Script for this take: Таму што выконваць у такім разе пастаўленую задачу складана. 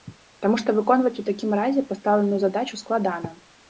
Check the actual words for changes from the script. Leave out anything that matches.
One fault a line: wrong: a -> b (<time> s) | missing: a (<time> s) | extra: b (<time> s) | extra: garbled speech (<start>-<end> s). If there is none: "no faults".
no faults